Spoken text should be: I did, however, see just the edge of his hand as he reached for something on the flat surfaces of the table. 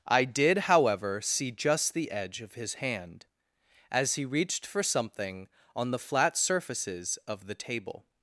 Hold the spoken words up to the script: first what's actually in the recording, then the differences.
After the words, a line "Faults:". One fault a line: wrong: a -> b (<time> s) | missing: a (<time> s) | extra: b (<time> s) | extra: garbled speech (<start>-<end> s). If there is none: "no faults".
I did, however, see just the edge of his hand as he reached for something on the flat surfaces of the table.
Faults:
no faults